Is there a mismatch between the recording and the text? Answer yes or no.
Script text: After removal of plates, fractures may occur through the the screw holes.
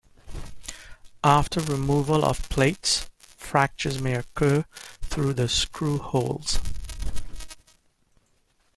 yes